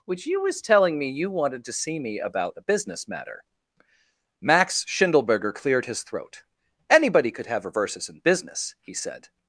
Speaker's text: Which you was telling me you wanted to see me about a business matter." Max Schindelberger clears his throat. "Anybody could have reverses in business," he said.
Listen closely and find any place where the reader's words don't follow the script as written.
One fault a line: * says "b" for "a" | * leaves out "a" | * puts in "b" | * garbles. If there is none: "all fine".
* says "cleared" for "clears"